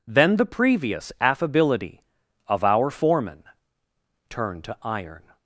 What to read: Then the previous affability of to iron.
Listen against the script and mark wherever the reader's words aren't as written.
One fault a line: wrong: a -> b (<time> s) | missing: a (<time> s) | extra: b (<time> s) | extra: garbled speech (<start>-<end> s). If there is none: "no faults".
extra: our foreman turned (2.6 s)